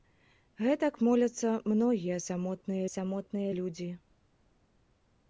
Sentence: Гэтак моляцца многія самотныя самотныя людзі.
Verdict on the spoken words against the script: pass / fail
pass